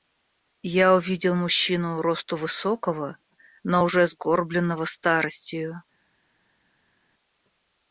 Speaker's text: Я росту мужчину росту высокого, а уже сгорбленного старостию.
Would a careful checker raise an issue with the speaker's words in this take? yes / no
yes